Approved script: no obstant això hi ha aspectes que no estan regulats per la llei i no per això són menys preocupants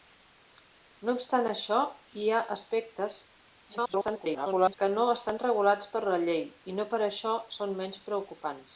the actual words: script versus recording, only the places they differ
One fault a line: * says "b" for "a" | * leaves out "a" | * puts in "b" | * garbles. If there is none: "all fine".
* garbles